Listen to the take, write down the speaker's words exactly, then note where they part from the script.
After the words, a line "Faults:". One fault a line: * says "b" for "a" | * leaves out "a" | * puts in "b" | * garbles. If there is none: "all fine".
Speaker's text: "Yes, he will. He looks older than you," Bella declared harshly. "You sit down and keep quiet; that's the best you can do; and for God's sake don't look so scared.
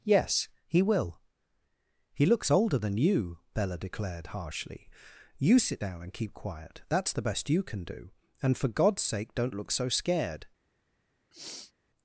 "Yes, he will. He looks older than you," Bella declared harshly. "You sit down and keep quiet; that's the best you can do; and for God's sake don't look so scared.
Faults:
all fine